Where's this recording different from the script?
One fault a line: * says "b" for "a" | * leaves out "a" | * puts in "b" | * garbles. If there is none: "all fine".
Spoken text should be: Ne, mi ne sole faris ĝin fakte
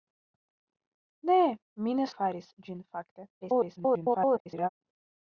* leaves out "sole"
* garbles